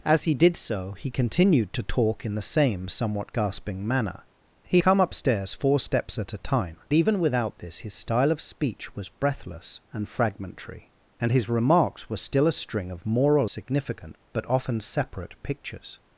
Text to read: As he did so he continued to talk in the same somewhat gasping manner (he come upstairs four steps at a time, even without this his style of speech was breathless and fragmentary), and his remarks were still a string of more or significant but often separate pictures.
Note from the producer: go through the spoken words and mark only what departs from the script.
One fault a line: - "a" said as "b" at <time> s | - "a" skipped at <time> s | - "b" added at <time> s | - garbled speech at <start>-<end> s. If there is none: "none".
none